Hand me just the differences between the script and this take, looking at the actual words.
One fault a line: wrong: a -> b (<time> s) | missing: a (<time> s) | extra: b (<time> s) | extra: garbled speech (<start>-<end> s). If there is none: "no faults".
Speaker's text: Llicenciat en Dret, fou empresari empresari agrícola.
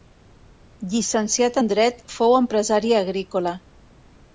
missing: empresari (3.0 s)